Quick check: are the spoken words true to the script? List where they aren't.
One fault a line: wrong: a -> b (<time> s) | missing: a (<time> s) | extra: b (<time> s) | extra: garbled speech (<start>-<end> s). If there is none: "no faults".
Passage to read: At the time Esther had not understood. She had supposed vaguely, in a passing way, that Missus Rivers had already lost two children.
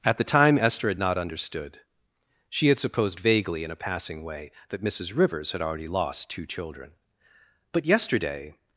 extra: But yesterday (7.7 s)